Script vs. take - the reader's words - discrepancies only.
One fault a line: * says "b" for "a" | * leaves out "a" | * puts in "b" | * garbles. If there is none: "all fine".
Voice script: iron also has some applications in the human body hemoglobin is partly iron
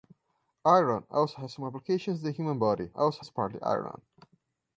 * says "also" for "hemoglobin"